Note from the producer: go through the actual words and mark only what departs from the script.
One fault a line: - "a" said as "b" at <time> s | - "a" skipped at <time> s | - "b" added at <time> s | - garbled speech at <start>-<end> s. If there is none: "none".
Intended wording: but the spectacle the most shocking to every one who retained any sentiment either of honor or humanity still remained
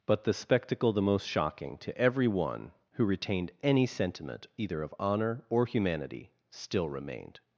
none